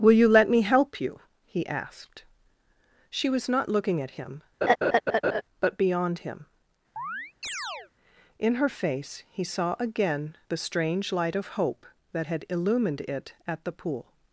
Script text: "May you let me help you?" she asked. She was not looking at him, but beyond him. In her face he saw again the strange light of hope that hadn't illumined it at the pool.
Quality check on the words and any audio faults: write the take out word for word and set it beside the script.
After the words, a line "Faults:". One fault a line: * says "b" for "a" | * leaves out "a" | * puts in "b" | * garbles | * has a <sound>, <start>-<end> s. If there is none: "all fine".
"Will you let me help you?" he asked. She was not looking at him, but beyond him. In her face he saw again the strange light of hope that had illumined it at the pool.
Faults:
* says "Will" for "May"
* says "he" for "she"
* has a laugh, 4.6-5.4 s
* has a chirp, 7.0-7.9 s
* says "had" for "hadn't"